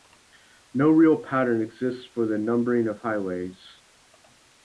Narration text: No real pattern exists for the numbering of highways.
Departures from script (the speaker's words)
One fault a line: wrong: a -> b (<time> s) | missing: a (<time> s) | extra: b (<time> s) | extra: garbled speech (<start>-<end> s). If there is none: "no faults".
no faults